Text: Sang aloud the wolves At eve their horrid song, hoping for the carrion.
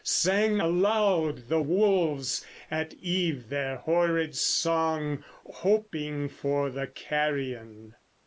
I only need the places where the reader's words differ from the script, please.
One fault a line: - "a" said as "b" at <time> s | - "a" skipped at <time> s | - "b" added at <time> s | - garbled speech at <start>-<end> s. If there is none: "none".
none